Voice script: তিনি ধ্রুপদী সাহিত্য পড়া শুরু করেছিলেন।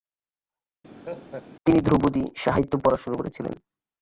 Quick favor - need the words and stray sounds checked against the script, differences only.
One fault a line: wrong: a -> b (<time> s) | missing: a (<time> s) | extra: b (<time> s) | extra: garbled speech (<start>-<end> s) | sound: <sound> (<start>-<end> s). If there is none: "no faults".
sound: laugh (1.0-1.5 s)